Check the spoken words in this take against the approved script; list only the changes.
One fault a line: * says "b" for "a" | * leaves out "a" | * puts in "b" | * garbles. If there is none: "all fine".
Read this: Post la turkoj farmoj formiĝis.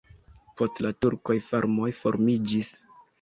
all fine